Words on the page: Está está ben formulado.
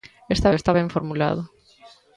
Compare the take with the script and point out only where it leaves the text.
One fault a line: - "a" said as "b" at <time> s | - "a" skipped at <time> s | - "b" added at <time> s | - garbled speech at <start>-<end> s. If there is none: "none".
none